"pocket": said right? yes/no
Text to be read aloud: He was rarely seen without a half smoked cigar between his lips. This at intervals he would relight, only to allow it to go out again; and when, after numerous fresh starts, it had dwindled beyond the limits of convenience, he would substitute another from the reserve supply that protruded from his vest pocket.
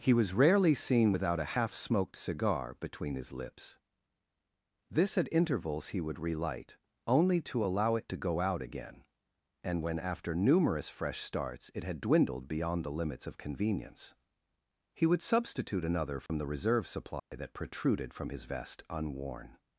no